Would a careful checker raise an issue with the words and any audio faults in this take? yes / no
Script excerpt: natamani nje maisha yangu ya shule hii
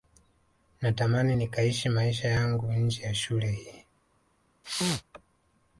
yes